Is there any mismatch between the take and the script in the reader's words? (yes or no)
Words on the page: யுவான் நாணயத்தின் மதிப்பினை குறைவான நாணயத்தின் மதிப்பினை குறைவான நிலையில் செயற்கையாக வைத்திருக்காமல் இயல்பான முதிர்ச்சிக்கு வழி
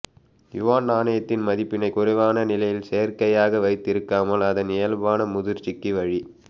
yes